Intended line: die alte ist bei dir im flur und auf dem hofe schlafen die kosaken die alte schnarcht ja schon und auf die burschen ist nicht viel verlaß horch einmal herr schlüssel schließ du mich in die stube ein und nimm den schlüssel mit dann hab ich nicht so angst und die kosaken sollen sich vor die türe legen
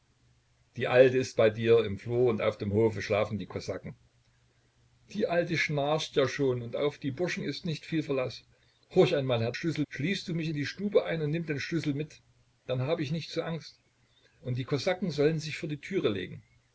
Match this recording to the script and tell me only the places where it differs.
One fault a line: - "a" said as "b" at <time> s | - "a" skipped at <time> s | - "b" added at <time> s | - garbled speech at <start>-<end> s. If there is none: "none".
none